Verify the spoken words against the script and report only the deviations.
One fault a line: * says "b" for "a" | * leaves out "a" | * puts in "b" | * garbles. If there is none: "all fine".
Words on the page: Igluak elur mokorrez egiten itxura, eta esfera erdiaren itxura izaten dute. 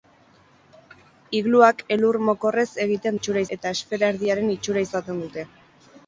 all fine